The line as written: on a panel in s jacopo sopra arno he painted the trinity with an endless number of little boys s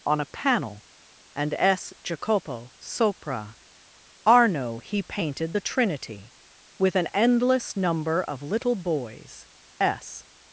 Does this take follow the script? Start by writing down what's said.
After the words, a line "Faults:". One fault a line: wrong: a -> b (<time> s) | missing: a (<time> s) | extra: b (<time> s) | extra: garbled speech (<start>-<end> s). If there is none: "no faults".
on a panel and s jacopo sopra arno he painted the trinity with an endless number of little boys s
Faults:
wrong: in -> and (1.4 s)